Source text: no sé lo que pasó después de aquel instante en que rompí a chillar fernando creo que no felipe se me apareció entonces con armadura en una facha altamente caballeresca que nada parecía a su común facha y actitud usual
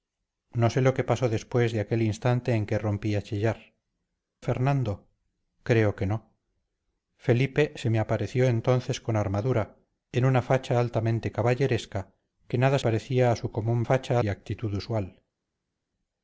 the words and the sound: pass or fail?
pass